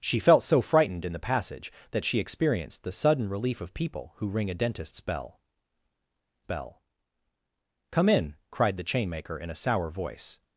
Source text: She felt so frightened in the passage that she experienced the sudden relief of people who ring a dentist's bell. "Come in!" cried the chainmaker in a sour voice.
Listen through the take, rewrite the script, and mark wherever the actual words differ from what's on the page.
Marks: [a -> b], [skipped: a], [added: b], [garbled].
She felt so frightened in the passage that she experienced the sudden relief of people who ring a dentist's bell. [added: bell] "Come in!" cried the chainmaker in a sour voice.